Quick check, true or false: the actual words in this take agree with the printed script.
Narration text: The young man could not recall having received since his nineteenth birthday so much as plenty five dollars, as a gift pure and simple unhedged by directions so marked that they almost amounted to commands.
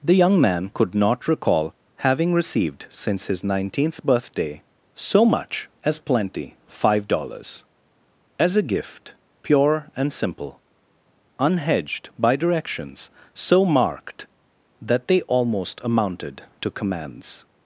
true